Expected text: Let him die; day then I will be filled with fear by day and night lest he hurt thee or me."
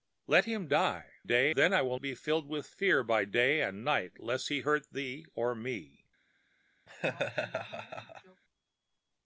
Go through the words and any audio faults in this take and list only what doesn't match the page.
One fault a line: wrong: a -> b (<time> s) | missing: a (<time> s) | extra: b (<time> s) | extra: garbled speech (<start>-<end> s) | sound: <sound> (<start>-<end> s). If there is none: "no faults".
sound: laugh (6.9-8.4 s)